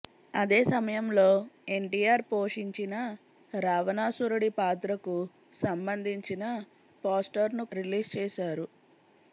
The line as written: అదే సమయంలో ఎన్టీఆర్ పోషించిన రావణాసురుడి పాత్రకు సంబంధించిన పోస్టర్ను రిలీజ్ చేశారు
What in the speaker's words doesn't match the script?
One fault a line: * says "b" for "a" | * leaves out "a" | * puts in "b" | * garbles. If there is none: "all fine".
all fine